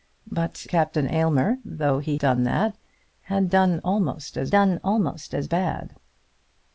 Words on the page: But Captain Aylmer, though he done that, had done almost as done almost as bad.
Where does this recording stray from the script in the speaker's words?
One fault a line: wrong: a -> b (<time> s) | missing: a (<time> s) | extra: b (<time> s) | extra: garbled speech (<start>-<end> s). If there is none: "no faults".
no faults